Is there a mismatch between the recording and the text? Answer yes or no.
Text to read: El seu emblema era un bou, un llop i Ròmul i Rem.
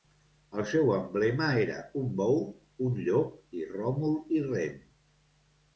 no